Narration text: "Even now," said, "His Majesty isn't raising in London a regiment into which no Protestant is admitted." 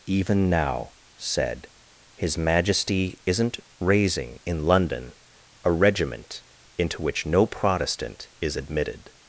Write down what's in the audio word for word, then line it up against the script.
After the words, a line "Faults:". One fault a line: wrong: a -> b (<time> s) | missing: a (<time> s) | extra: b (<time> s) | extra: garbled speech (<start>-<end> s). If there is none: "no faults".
"Even now," said, "His Majesty isn't raising in London a regiment into which no Protestant is admitted."
Faults:
no faults